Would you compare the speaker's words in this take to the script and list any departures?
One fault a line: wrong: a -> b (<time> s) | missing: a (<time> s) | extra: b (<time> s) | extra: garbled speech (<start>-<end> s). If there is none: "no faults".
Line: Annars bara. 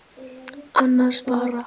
no faults